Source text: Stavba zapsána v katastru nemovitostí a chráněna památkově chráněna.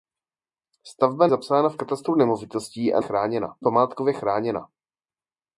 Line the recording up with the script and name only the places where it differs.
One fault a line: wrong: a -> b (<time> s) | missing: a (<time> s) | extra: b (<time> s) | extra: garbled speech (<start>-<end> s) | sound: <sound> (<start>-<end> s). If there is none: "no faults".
no faults